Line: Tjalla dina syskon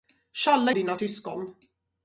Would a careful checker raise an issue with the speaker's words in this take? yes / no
no